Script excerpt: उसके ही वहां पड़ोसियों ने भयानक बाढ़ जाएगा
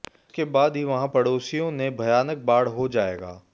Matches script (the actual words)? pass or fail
fail